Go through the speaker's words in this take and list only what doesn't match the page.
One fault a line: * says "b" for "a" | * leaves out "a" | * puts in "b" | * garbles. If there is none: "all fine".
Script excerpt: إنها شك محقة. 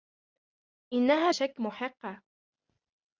all fine